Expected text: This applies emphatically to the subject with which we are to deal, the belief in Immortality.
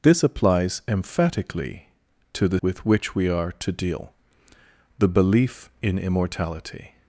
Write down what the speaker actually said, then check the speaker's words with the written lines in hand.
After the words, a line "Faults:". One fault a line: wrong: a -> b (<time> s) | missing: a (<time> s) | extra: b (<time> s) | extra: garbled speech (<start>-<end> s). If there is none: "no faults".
This applies emphatically to the with which we are to deal, the belief in Immortality.
Faults:
missing: subject (2.6 s)